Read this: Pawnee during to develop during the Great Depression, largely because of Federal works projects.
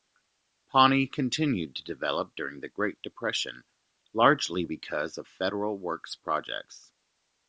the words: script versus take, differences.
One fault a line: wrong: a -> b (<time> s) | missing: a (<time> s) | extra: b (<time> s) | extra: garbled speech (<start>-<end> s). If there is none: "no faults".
wrong: during -> continued (1.1 s)